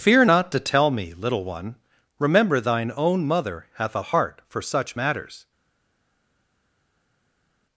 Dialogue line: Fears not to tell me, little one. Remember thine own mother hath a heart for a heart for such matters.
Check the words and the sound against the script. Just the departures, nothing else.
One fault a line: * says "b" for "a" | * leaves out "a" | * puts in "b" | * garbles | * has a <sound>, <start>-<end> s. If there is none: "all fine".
* says "Fear" for "Fears"
* leaves out "a heart for"